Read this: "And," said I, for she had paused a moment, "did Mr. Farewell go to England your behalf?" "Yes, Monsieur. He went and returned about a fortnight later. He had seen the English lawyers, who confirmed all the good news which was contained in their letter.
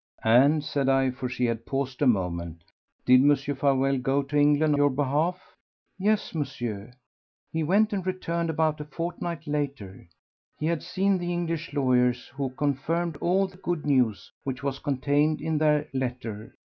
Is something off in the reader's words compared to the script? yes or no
no